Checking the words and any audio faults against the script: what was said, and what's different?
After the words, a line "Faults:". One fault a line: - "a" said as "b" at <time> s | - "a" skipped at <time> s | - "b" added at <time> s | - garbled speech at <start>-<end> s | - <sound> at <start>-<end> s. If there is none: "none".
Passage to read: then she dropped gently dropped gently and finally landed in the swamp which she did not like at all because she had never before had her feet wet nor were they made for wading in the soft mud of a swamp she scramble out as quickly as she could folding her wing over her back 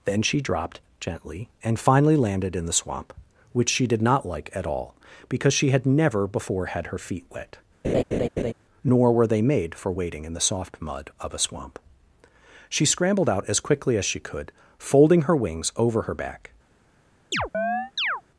then she dropped gently and finally landed in the swamp which she did not like at all because she had never before had her feet wet nor were they made for wading in the soft mud of a swamp she scrambled out as quickly as she could folding her wings over her back
Faults:
- "dropped gently" skipped at 1.5 s
- laugh at 7.8-8.5 s
- "scramble" said as "scrambled" at 12.9 s
- "wing" said as "wings" at 15.3 s
- chirp at 17.3-18.2 s